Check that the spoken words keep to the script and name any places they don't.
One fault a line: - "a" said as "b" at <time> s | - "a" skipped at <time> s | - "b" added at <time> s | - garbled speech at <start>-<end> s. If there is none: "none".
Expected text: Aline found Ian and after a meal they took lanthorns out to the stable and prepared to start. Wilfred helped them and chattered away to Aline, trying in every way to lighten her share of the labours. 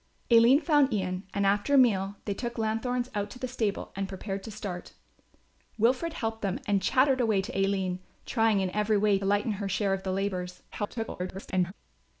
- "to" skipped at 9.2 s
- garbled speech at 10.7-11.7 s